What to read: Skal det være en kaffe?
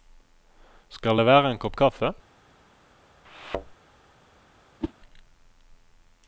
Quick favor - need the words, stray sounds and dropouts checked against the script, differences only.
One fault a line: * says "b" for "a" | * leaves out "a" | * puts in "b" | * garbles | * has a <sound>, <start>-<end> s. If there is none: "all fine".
* puts in "kopp"
* has a thud, 3.2-3.7 s
* has a whoosh, 4.8-4.9 s